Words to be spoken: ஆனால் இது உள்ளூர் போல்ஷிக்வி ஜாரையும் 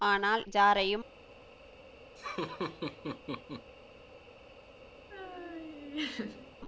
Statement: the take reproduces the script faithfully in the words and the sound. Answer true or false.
false